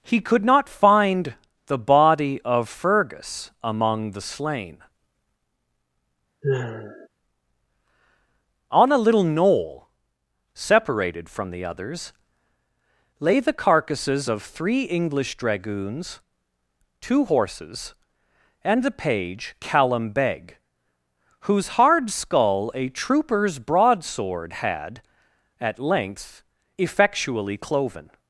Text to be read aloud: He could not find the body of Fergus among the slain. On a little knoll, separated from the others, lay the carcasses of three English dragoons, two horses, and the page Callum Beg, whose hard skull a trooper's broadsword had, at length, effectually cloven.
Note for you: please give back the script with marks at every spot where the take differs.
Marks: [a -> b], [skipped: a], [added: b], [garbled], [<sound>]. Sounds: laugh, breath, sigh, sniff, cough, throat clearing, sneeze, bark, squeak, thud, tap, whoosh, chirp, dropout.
He could not find the body of Fergus among the slain. [sigh] On a little knoll, separated from the others, lay the carcasses of three English dragoons, two horses, and the page Callum Beg, whose hard skull a trooper's broadsword had, at length, effectually cloven.